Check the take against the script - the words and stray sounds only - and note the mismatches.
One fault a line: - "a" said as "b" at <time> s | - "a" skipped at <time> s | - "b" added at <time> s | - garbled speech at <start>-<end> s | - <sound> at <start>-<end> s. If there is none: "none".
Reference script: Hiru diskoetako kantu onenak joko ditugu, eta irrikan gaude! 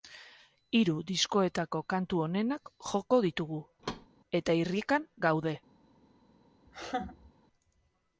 - thud at 3.8-4.1 s
- laugh at 6.7-7.3 s